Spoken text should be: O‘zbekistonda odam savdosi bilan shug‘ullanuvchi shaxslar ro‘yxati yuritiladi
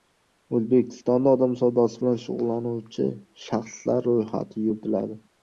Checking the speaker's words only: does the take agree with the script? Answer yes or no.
yes